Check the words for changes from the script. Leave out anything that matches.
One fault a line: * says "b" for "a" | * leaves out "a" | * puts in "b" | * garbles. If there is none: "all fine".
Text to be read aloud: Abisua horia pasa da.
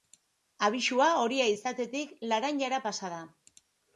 * puts in "izatetik laranjara"